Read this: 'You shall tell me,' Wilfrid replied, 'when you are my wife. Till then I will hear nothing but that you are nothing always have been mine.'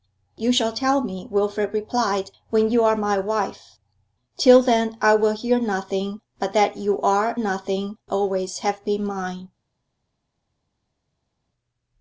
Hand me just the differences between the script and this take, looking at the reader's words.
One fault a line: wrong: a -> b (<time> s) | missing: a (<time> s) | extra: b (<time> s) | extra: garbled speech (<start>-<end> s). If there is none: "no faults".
no faults